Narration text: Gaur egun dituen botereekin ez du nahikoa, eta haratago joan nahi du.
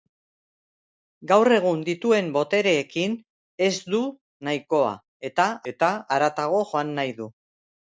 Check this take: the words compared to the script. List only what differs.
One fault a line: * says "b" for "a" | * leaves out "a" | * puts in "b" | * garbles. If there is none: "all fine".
* puts in "eta"